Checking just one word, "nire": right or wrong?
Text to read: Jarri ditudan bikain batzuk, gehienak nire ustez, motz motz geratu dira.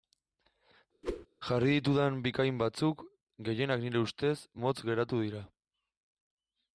right